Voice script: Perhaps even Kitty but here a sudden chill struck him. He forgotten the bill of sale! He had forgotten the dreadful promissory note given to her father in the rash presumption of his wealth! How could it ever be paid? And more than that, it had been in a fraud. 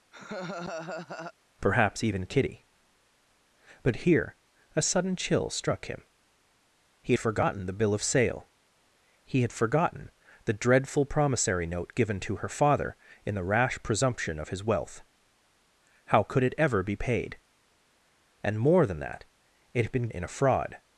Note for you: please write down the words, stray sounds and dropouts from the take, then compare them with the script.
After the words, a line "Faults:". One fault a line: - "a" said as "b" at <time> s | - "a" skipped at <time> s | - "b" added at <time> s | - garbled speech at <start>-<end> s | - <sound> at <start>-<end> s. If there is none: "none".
Perhaps even Kitty but here a sudden chill struck him. He forgotten the bill of sale! He had forgotten the dreadful promissory note given to her father in the rash presumption of his wealth! How could it ever be paid? And more than that, it had been in a fraud.
Faults:
- laugh at 0.1-1.3 s